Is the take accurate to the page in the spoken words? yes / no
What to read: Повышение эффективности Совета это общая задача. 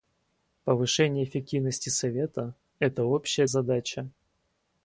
yes